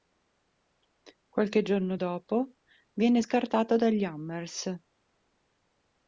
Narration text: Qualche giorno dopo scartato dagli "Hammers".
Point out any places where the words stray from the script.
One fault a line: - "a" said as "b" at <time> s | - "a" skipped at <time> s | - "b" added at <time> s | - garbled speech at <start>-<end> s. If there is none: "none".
- "viene" added at 2.9 s